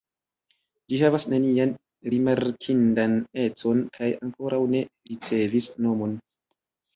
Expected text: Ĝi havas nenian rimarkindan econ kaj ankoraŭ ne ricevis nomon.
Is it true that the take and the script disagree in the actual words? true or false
false